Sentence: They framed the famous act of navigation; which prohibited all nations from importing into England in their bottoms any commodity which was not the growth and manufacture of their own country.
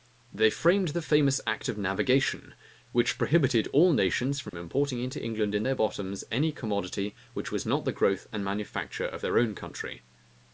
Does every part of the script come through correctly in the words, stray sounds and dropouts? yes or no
no